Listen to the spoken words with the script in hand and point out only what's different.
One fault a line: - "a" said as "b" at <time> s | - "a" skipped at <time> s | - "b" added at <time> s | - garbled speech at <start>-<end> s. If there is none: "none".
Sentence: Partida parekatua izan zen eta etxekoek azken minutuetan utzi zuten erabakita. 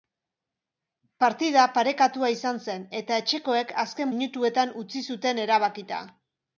none